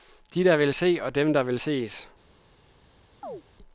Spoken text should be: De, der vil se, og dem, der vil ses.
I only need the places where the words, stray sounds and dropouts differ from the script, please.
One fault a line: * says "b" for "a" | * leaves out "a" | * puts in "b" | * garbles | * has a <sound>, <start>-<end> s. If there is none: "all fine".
* has a chirp, 3.2-3.4 s